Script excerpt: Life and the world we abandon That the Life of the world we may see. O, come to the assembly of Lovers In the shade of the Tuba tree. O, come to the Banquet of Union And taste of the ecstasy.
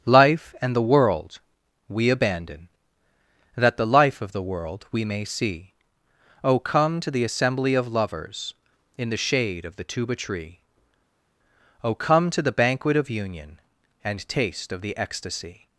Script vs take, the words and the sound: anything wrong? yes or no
no